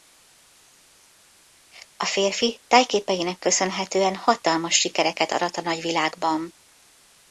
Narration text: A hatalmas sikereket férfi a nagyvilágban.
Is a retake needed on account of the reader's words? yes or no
yes